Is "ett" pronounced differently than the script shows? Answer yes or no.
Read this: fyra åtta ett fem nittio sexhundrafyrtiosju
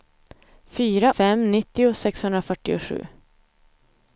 yes